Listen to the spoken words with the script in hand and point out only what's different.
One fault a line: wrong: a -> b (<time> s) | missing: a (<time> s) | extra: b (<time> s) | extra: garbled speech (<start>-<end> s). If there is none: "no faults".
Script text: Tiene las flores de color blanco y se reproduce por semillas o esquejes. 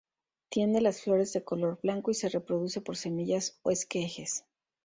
no faults